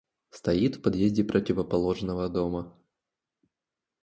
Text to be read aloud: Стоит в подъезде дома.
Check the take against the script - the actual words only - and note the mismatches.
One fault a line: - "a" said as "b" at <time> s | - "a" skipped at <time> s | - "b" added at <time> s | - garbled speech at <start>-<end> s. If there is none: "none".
- "противоположного" added at 1.2 s